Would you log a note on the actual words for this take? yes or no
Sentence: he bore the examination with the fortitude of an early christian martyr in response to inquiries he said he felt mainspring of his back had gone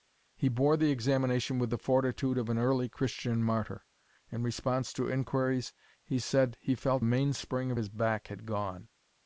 no